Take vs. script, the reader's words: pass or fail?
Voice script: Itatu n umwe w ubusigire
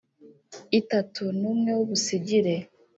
pass